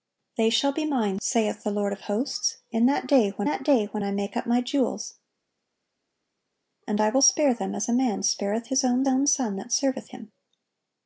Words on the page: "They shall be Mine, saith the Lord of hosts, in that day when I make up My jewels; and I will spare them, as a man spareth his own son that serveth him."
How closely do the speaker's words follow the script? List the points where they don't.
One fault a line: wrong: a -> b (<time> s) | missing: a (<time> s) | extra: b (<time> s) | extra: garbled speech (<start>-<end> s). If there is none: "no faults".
extra: that day when (3.4 s)
extra: own (9.1 s)